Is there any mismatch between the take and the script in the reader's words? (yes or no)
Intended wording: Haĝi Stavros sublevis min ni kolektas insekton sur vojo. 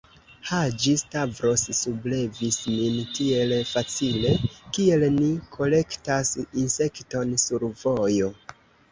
yes